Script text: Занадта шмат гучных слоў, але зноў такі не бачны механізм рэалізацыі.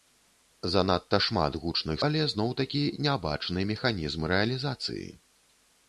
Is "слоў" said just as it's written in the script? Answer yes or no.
no